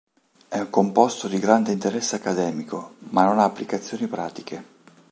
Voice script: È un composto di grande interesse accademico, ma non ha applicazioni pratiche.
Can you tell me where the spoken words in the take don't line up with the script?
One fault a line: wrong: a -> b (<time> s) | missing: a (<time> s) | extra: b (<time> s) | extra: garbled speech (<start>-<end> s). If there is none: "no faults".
no faults